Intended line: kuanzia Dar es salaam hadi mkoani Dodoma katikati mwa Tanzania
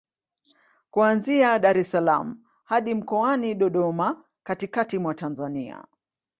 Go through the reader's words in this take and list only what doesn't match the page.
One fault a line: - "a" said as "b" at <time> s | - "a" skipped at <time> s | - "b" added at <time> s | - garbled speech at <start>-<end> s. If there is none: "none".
none